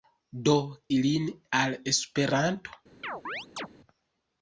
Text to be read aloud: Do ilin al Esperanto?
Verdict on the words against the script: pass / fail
pass